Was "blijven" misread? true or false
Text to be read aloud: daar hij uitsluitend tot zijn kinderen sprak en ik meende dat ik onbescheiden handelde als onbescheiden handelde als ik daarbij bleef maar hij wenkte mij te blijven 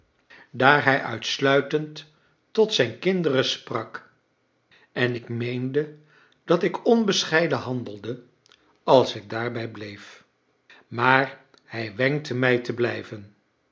false